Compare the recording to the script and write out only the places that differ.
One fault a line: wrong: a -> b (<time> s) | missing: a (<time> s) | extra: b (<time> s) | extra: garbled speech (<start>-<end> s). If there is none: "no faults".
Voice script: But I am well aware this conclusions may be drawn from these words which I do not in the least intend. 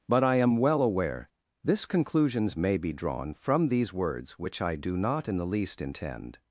no faults